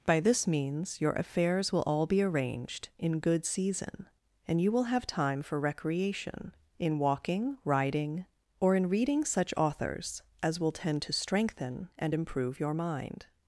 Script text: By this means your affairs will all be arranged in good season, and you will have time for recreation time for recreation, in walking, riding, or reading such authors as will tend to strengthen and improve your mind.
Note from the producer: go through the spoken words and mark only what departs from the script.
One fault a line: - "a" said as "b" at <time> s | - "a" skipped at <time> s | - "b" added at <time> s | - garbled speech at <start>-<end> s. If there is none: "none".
- "time for recreation" skipped at 6.5 s
- "in" added at 8.8 s